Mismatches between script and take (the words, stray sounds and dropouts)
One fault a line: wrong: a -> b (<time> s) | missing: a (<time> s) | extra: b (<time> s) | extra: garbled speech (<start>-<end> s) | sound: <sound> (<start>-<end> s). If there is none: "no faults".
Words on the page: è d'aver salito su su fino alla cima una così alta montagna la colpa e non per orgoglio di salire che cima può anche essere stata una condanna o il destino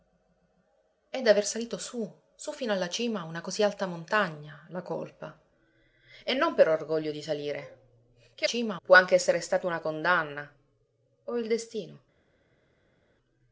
no faults